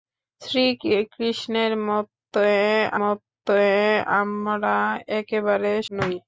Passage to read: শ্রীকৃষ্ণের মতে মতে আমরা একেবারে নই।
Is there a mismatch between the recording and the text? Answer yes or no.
no